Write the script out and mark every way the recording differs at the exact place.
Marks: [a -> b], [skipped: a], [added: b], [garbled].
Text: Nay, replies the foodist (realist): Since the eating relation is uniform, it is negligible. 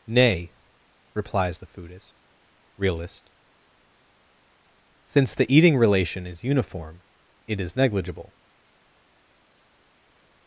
Nay, replies the foodist (realist): Since the eating relation is uniform, it is negligible.